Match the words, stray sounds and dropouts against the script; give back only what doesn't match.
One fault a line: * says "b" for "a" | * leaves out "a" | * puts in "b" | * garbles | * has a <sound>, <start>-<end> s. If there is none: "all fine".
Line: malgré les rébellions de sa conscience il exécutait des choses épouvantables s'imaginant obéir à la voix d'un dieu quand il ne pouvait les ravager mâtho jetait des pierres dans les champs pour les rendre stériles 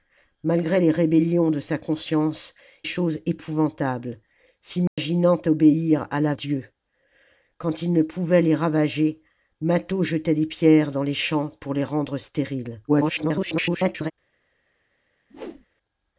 * leaves out "il exécutait des"
* has a dropout, 4.9-5.0 s
* leaves out "voix d'un"
* garbles
* has a whoosh, 15.3-15.7 s